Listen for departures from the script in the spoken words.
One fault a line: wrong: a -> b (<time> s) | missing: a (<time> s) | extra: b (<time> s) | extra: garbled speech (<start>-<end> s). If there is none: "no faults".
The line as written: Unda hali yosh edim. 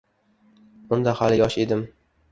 no faults